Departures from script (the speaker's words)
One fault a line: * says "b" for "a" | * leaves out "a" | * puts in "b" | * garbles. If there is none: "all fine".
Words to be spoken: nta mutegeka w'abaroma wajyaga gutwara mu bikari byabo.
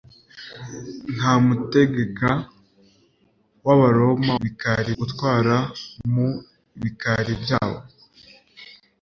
* says "bikari" for "wajyaga"